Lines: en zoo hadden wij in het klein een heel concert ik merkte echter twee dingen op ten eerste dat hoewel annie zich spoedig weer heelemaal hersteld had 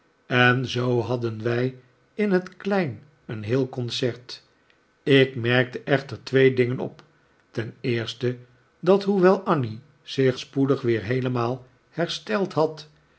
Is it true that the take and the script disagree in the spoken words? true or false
false